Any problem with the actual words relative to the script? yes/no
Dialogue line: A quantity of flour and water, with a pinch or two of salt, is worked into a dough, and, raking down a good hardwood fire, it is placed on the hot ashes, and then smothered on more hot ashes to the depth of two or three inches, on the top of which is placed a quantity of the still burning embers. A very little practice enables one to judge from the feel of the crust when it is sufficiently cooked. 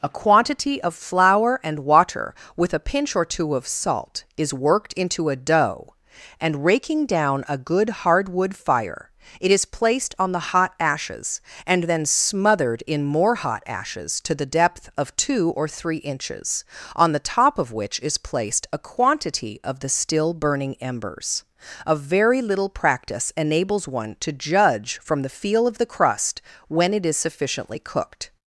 yes